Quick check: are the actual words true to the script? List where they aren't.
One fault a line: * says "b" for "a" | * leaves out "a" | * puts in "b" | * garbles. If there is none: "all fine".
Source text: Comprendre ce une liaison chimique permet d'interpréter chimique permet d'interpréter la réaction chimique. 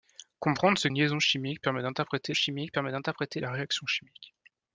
all fine